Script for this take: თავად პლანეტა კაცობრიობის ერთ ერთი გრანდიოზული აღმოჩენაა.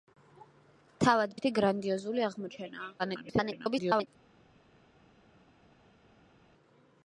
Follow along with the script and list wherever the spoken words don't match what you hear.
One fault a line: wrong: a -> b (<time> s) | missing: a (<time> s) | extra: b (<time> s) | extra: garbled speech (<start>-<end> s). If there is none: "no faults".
missing: პლანეტა კაცობრიობის ერთ (1.4 s)
extra: garbled speech (3.0-4.1 s)